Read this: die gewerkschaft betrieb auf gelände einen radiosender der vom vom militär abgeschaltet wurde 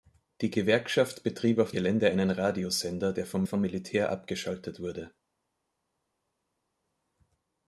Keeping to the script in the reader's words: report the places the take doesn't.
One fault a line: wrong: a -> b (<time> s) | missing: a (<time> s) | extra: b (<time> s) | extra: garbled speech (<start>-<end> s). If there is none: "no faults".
no faults